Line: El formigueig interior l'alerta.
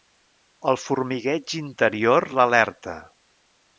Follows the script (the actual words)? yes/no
yes